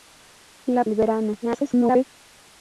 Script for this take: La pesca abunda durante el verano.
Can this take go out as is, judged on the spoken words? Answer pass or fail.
fail